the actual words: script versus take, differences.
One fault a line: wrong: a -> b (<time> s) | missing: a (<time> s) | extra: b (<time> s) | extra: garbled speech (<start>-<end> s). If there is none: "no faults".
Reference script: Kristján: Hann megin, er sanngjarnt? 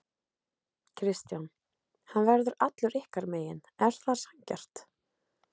extra: verður allur ykkar (2.3 s)
extra: það (4.0 s)